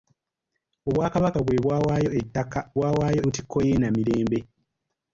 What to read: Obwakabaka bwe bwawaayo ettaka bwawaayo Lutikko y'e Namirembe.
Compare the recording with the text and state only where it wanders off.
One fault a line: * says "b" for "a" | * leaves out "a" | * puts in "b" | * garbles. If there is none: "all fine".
all fine